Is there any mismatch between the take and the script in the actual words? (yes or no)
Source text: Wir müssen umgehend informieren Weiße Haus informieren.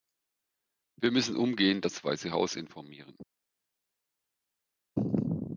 yes